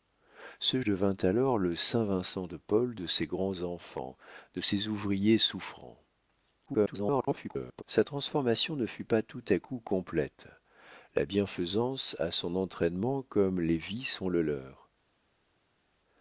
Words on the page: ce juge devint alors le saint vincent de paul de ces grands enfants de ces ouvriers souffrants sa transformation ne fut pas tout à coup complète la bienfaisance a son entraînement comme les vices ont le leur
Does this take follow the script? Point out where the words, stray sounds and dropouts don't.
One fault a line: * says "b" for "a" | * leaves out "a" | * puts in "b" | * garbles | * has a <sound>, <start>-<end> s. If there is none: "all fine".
* leaves out "juge"
* garbles